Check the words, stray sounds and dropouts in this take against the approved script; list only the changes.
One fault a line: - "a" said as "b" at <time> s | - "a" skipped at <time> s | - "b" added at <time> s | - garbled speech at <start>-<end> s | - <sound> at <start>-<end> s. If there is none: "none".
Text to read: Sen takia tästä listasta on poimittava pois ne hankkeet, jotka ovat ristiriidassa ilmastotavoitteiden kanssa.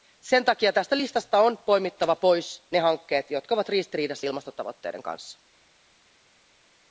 none